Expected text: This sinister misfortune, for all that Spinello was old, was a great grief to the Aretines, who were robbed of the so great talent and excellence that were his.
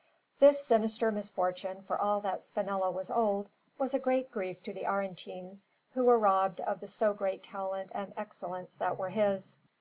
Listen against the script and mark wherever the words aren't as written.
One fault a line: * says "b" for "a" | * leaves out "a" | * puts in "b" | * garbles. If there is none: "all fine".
all fine